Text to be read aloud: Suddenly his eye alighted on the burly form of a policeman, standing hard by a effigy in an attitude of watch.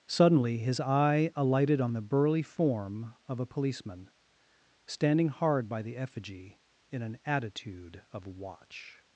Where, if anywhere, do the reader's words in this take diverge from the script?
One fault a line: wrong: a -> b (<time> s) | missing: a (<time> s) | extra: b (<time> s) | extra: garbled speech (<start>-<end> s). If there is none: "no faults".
wrong: a -> the (5.8 s)